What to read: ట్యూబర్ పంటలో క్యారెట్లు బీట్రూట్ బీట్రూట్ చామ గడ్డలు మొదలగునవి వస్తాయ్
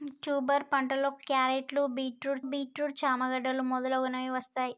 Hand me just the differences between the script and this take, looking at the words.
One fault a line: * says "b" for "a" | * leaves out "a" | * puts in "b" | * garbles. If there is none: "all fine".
all fine